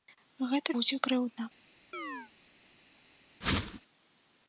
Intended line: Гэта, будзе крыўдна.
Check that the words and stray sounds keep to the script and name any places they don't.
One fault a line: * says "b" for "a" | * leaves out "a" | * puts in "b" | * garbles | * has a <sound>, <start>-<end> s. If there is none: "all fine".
* has a chirp, 1.9-2.3 s
* has a whoosh, 3.4-3.8 s